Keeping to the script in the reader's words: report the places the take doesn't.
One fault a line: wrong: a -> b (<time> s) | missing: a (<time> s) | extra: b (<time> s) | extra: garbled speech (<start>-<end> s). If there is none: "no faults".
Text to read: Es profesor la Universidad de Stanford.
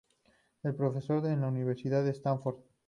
extra: en (1.3 s)